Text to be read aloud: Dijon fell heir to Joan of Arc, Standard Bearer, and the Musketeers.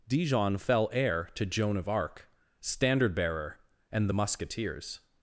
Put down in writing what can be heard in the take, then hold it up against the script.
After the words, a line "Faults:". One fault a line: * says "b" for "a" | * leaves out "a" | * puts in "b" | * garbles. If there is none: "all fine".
Dijon fell heir to Joan of Arc, Standard Bearer, and the Musketeers.
Faults:
all fine